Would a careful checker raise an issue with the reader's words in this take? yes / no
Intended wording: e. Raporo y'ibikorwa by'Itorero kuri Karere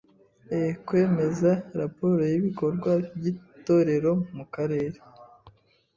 yes